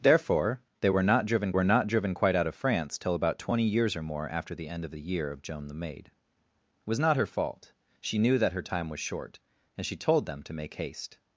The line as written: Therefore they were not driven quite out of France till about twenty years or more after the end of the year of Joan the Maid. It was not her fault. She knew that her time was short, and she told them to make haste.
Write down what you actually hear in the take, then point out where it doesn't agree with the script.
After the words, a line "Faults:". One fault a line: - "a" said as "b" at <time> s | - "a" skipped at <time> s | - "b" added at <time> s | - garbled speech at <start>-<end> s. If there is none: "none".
Therefore they were not driven were not driven quite out of France till about twenty years or more after the end of the year of Joan the Maid. It was not her fault. She knew that her time was short, and she told them to make haste.
Faults:
- "were not driven" added at 1.5 s